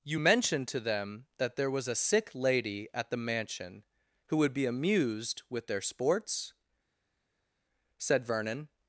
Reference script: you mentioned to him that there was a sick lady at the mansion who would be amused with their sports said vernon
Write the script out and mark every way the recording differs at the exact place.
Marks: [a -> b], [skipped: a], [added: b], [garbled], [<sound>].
you mentioned to [him -> them] that there was a sick lady at the mansion who would be amused with their sports said vernon